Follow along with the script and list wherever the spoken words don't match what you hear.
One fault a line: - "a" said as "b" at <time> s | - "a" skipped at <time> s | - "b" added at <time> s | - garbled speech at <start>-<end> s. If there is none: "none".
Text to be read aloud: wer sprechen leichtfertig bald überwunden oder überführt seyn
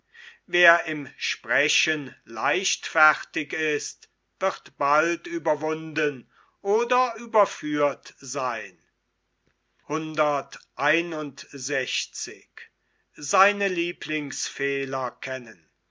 - "im" added at 0.8 s
- "ist wird" added at 3.5 s